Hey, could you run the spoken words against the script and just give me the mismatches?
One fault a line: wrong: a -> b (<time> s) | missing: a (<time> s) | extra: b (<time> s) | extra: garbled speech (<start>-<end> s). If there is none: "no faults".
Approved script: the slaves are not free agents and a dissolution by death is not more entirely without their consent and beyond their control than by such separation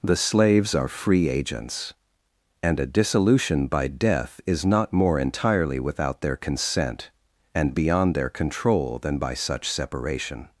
missing: not (0.9 s)